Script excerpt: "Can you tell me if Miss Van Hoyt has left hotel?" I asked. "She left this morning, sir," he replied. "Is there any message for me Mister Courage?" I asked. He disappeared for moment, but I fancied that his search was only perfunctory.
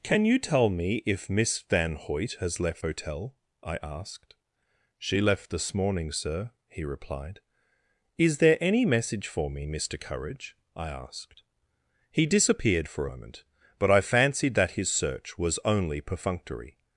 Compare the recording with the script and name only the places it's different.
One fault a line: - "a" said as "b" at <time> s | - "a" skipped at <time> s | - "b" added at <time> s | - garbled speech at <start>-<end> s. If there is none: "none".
none